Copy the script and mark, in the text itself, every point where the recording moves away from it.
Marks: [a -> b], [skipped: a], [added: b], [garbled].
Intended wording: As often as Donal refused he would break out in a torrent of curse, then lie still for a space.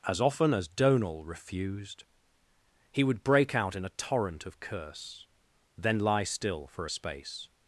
As often as Donal refused he would break out in a torrent of curse, then lie still for a space.